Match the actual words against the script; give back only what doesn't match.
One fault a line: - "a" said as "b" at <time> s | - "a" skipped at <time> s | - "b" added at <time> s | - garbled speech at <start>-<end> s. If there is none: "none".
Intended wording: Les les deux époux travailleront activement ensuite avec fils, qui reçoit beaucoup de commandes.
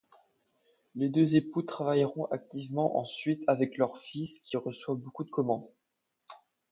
- "les" skipped at 1.1 s
- "leur" added at 3.8 s